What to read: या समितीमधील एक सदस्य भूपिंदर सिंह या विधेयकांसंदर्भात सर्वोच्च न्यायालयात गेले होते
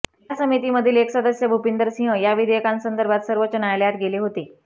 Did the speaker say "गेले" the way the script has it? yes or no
yes